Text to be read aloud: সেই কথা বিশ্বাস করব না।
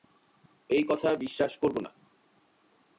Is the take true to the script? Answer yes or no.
no